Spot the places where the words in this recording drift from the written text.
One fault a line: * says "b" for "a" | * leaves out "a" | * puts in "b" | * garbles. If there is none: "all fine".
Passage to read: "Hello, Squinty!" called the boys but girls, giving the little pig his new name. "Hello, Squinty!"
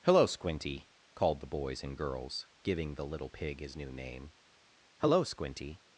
* says "and" for "but"